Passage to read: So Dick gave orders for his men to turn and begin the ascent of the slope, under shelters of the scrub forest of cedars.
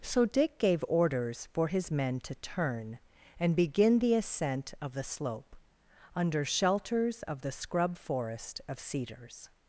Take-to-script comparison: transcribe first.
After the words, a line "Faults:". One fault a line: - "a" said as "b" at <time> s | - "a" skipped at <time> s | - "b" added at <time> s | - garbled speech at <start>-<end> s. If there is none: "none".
So Dick gave orders for his men to turn and begin the ascent of the slope, under shelters of the scrub forest of cedars.
Faults:
none